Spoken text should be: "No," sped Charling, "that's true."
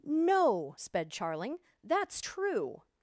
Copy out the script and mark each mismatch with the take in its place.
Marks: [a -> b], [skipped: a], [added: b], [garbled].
"No," sped Charling, "that's true."